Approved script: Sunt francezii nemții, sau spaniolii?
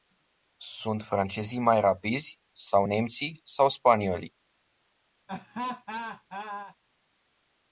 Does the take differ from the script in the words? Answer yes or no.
yes